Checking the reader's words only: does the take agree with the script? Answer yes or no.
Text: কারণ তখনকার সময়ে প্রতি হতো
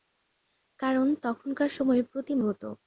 yes